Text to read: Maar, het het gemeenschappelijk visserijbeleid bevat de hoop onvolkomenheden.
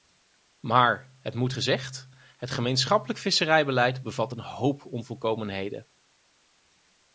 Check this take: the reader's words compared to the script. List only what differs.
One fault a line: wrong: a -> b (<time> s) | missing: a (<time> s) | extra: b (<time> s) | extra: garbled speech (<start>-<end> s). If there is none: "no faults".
extra: moet gezegd (1.4 s)
wrong: de -> een (4.3 s)